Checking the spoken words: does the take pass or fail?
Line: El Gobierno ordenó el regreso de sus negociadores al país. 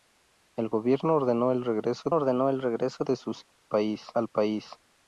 fail